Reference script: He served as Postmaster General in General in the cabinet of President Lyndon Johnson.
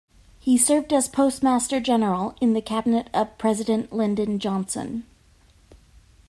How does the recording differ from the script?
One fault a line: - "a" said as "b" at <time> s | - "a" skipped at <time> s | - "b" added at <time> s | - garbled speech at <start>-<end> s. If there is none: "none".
- "General in" skipped at 2.5 s